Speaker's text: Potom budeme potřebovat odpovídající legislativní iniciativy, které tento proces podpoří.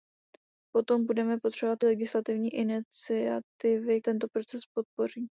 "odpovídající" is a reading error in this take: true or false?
true